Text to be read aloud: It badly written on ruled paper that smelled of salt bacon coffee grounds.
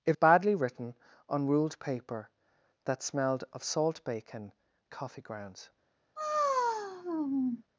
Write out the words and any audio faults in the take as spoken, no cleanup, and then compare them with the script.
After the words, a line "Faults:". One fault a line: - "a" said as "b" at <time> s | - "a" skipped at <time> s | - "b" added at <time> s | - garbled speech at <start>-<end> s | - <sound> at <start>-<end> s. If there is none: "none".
It badly written on ruled paper that smelled of salt bacon coffee grounds.
Faults:
- sigh at 6.2-7.6 s